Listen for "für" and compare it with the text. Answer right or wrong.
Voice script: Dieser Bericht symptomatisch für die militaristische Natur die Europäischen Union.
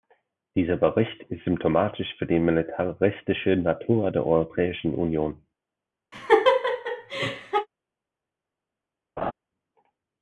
right